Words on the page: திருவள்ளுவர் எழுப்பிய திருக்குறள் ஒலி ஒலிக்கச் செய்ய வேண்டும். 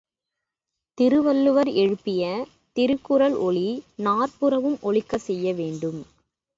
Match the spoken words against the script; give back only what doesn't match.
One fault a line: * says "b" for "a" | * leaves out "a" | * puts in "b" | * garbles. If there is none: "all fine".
* puts in "நாற்புறமும்"